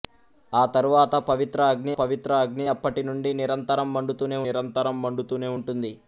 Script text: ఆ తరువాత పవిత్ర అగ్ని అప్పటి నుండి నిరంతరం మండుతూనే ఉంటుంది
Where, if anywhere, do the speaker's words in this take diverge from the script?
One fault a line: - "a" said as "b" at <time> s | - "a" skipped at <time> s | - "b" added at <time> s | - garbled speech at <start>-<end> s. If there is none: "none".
- "పవిత్ర అగ్ని" added at 2.0 s
- "నిరంతరం మండుతూనే" added at 4.5 s